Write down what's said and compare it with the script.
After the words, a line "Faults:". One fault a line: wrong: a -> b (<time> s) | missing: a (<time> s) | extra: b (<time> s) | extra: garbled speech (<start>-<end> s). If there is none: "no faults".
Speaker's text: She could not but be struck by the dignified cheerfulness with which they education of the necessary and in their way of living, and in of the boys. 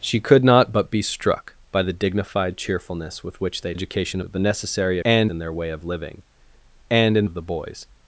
She could not but be struck by the dignified cheerfulness with which they education of the necessary and in their way of living, and in of the boys.
Faults:
no faults